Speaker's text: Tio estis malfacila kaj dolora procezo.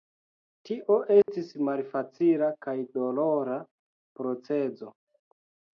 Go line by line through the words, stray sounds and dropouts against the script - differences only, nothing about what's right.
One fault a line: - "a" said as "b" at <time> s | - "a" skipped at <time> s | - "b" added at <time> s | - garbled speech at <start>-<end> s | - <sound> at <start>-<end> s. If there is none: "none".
- dropout at 1.2-1.3 s